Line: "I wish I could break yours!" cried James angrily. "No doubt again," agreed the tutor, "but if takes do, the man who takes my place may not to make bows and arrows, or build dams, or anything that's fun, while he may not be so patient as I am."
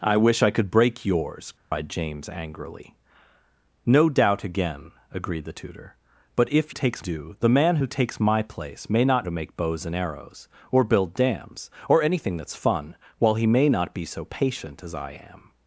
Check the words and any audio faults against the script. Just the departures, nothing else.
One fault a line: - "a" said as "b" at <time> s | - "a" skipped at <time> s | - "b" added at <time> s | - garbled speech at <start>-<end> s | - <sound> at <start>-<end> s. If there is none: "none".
- dropout at 1.6-1.7 s